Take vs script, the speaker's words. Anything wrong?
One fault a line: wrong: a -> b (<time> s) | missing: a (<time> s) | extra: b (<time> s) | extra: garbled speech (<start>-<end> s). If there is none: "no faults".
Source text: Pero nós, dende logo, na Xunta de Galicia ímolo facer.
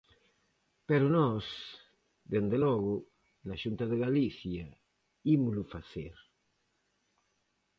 no faults